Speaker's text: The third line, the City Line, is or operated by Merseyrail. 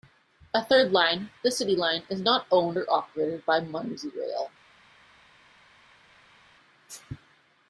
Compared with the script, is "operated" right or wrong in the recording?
right